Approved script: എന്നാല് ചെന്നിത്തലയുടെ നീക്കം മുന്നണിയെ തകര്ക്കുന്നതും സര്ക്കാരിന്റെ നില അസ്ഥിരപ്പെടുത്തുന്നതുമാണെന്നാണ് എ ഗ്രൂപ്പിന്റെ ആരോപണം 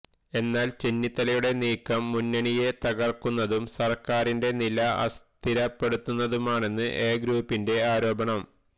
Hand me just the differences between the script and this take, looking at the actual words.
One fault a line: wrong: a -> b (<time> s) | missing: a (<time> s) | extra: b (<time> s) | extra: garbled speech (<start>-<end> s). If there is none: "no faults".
no faults